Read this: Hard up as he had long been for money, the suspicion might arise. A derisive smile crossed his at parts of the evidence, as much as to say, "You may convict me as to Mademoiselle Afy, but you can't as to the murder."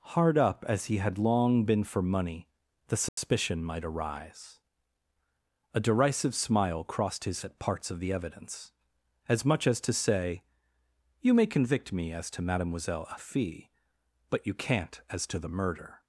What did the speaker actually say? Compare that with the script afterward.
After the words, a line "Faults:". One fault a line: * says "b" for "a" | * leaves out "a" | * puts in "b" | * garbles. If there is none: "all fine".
Hard up as he had long been for money, the suspicion might arise. A derisive smile crossed his at parts of the evidence, as much as to say, "You may convict me as to Mademoiselle Afy, but you can't as to the murder."
Faults:
all fine